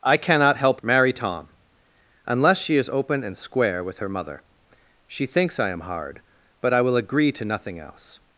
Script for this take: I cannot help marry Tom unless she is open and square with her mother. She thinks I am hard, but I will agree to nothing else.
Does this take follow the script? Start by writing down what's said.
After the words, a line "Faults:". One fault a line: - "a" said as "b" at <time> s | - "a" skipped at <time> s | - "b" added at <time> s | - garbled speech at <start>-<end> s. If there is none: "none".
I cannot help marry Tom unless she is open and square with her mother. She thinks I am hard, but I will agree to nothing else.
Faults:
none